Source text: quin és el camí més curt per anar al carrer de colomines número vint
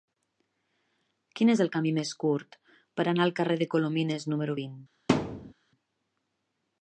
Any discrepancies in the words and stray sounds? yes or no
yes